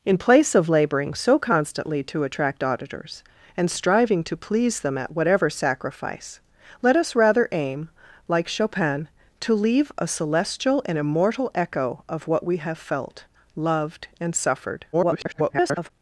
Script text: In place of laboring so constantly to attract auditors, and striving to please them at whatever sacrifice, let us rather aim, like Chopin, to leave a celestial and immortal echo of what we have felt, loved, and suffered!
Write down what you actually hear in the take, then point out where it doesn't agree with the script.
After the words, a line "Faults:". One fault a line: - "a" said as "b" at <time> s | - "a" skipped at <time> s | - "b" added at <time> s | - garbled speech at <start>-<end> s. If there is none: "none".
In place of laboring so constantly to attract auditors, and striving to please them at whatever sacrifice, let us rather aim, like Chopin, to leave a celestial and immortal echo of what we have felt, loved, and suffered! [garbled]
Faults:
- garbled speech at 14.9-15.9 s